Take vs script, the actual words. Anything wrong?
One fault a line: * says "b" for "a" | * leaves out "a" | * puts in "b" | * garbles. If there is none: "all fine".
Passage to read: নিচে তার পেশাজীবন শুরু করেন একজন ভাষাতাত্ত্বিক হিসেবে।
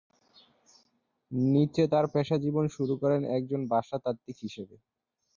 all fine